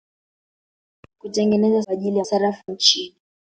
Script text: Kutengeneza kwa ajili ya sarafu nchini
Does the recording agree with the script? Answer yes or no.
yes